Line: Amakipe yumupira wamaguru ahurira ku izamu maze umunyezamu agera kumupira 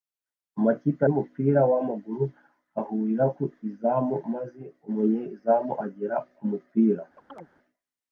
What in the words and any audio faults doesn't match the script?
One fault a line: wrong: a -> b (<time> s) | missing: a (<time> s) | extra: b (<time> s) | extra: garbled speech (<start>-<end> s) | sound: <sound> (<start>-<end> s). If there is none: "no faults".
sound: chirp (7.2-7.5 s)